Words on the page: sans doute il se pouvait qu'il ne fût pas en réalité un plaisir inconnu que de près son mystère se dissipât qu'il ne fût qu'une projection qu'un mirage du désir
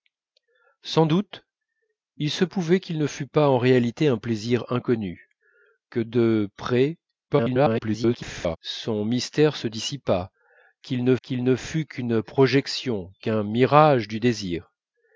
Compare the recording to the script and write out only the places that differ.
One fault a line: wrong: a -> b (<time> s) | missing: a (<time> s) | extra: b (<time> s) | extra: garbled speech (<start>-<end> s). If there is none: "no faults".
extra: garbled speech (7.3-8.6 s)
extra: qu'il ne (11.2 s)